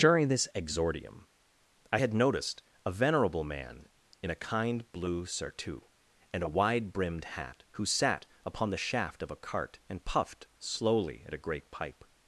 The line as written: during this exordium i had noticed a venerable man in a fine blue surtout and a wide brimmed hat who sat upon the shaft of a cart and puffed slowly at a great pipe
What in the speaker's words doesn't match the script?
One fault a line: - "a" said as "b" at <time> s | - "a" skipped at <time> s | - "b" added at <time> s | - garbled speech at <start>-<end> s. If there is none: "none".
- "fine" said as "kind" at 4.4 s